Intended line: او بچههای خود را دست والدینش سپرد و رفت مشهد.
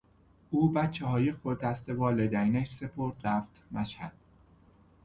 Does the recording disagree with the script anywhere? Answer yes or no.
yes